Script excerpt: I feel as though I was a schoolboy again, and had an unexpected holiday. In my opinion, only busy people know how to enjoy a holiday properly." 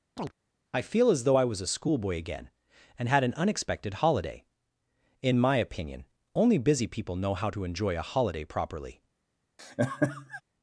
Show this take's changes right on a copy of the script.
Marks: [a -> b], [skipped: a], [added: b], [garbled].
I feel as though I was a schoolboy again, and had an unexpected holiday. In my opinion, only busy people know how to enjoy a holiday properly."